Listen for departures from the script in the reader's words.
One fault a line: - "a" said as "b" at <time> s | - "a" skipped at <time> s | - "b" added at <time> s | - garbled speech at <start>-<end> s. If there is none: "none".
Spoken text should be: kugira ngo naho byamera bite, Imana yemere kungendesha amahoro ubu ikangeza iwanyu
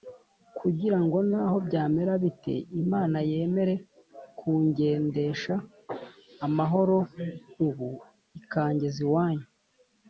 none